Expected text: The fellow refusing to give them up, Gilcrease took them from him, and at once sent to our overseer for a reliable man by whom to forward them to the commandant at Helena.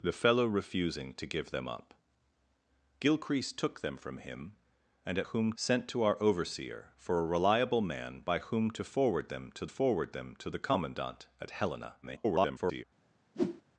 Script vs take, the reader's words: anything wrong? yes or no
yes